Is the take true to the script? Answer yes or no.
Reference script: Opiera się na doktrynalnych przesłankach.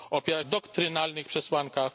no